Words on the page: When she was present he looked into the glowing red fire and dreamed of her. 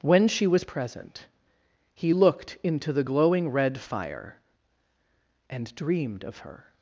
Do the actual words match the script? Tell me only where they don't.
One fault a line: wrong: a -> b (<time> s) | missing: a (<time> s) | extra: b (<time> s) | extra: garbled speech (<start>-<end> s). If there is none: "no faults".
no faults